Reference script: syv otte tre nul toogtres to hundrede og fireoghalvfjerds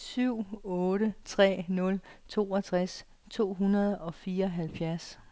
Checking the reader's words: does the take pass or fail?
pass